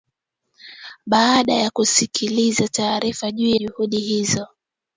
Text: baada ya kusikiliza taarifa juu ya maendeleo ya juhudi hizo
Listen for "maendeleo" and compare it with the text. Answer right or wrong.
wrong